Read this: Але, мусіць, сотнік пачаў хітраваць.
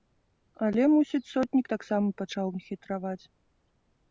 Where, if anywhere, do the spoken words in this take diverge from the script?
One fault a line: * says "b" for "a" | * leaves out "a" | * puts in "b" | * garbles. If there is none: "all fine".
* puts in "таксама"